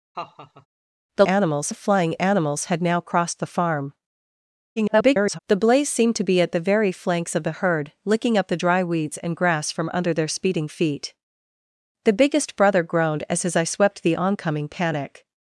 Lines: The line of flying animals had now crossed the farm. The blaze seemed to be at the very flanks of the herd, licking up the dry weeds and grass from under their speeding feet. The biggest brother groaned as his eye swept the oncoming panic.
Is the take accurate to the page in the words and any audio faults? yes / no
no